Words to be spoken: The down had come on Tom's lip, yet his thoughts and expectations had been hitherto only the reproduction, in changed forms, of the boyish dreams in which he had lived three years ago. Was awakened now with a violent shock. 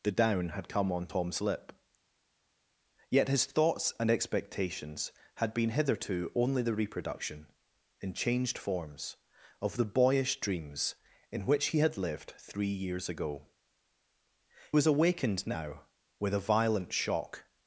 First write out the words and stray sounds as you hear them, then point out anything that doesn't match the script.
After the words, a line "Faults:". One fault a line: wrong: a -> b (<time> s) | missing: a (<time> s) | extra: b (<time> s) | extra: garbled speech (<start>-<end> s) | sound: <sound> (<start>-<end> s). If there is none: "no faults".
The down had come on Tom's lip, yet his thoughts and expectations had been hitherto only the reproduction, in changed forms, of the boyish dreams in which he had lived three years ago. Was awakened now with a violent shock.
Faults:
no faults